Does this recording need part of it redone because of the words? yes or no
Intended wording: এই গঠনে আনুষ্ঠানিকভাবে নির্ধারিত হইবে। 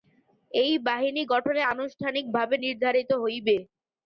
yes